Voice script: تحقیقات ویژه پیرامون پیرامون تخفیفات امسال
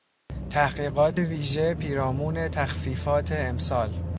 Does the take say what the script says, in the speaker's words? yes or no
no